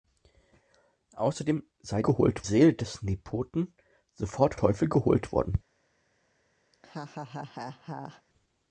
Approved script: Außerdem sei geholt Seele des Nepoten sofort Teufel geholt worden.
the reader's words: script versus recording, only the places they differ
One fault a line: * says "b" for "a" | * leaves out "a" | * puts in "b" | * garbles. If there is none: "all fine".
all fine